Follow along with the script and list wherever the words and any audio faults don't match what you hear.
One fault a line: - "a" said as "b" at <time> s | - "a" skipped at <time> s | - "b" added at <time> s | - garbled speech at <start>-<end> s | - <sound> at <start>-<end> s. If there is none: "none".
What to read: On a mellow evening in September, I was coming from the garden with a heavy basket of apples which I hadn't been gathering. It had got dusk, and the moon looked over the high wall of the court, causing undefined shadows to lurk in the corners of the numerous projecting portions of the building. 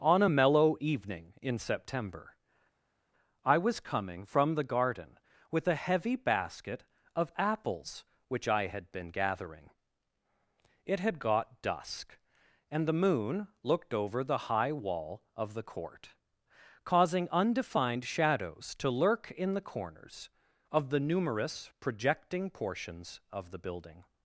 - "hadn't" said as "had" at 8.6 s